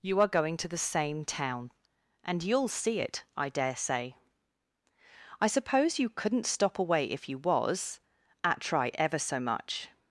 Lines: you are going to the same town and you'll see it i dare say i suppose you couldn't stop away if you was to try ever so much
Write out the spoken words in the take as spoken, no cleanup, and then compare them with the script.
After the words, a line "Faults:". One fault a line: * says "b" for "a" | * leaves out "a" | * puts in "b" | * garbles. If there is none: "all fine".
you are going to the same town and you'll see it i dare say i suppose you couldn't stop away if you was at try ever so much
Faults:
* says "at" for "to"